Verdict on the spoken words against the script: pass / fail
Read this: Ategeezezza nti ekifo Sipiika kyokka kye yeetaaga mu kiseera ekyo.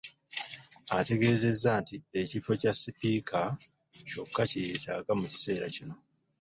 fail